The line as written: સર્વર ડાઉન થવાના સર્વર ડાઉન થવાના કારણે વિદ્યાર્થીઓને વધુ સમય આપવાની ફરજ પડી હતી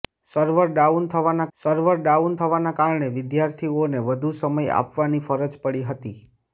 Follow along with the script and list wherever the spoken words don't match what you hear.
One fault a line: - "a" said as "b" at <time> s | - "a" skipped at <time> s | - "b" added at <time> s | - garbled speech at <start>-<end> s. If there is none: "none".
none